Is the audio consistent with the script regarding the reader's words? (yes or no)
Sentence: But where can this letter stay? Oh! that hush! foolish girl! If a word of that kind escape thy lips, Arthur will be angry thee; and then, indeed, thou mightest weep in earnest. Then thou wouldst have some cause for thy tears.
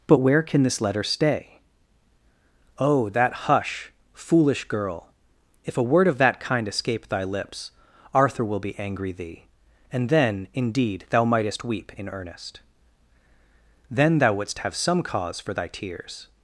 yes